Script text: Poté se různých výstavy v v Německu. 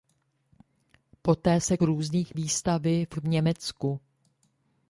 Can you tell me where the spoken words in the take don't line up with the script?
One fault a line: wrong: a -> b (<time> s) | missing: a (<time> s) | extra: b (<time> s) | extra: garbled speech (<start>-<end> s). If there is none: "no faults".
no faults